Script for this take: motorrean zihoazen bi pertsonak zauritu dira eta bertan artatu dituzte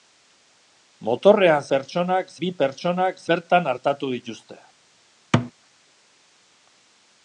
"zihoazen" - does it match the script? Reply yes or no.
no